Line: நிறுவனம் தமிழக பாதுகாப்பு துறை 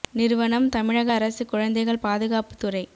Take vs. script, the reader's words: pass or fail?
fail